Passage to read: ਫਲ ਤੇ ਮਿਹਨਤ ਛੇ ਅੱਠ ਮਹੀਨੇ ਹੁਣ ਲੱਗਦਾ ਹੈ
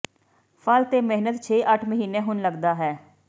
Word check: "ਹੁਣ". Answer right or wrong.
right